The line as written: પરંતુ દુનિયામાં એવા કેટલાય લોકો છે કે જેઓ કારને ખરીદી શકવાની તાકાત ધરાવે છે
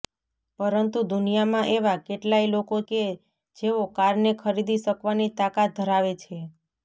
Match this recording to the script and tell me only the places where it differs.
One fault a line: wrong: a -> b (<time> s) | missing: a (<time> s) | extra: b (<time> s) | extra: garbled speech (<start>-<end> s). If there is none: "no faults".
missing: છે (2.8 s)